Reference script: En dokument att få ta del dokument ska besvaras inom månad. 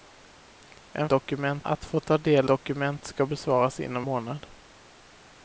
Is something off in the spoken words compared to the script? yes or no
no